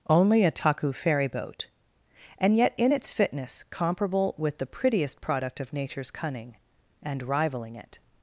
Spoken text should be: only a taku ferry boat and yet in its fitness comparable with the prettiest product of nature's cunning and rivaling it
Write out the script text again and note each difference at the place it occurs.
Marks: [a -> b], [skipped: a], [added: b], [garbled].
only a taku ferry boat and yet in its fitness comparable with the prettiest product of nature's cunning and rivaling it